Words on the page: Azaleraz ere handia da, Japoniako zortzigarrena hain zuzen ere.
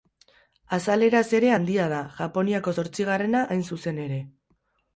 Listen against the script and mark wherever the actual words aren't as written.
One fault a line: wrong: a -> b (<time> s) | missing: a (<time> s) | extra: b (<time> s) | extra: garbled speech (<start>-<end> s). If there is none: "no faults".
no faults